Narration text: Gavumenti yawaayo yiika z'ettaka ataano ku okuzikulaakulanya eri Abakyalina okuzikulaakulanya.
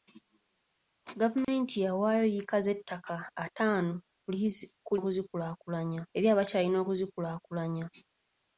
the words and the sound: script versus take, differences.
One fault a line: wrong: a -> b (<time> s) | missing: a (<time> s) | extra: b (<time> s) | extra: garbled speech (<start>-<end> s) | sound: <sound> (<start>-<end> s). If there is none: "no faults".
sound: dropout (1.4-1.5 s)